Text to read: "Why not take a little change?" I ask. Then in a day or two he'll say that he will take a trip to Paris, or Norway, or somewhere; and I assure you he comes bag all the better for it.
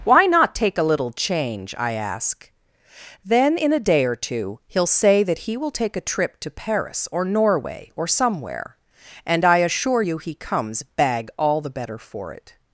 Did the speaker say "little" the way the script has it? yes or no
yes